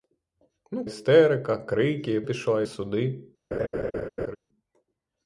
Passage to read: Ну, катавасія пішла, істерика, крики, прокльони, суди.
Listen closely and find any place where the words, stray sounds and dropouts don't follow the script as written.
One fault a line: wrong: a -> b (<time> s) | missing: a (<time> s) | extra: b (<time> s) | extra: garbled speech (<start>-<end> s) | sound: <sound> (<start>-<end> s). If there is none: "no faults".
missing: катавасія пішла (0.8 s)
wrong: прокльони -> пішла (2.2 s)
sound: laugh (3.5-4.4 s)